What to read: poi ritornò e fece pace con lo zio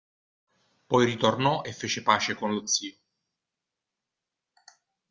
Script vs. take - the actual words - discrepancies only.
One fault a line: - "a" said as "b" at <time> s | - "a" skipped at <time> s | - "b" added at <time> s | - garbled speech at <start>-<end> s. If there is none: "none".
none